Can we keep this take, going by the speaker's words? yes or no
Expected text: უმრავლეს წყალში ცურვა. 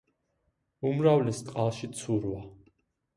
yes